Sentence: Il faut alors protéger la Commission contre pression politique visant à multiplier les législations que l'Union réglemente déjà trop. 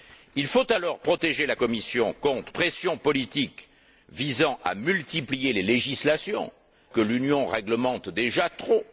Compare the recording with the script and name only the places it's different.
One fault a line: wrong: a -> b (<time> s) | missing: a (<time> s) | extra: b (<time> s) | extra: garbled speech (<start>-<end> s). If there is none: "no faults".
no faults